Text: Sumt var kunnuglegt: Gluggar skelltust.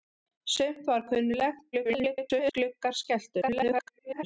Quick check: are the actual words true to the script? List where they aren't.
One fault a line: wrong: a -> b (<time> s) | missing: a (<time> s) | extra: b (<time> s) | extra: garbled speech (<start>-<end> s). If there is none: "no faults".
extra: garbled speech (1.7-2.5 s)
extra: garbled speech (3.4-4.2 s)